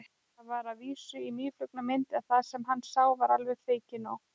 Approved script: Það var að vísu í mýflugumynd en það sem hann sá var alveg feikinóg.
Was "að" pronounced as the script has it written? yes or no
yes